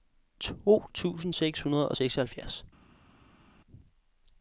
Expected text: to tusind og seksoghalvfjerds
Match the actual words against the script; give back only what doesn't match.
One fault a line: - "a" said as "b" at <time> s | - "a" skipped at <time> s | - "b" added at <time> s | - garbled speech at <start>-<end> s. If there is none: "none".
- "seks hundrede" added at 1.3 s